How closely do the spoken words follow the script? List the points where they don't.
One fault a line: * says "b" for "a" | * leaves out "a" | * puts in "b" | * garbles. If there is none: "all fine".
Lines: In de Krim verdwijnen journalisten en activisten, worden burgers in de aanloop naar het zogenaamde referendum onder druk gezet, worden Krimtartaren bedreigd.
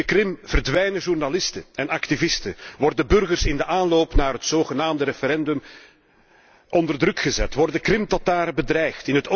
all fine